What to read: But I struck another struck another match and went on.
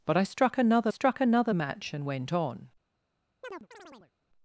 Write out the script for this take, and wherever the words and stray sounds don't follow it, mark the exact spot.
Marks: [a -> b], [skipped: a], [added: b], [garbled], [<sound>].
But I struck another struck another match and went on. [chirp]